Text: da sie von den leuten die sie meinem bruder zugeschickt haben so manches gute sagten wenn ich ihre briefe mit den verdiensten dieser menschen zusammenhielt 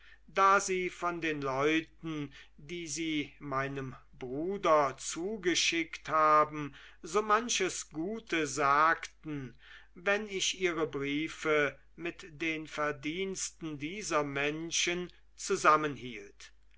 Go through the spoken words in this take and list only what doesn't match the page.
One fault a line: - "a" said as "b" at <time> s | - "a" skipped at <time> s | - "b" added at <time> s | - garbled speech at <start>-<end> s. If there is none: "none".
none